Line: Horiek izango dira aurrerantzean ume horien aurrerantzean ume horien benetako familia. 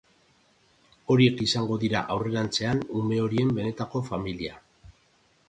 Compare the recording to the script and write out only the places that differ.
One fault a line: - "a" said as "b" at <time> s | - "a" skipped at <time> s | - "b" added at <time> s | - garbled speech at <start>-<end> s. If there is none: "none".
- "aurrerantzean ume horien" skipped at 3.5 s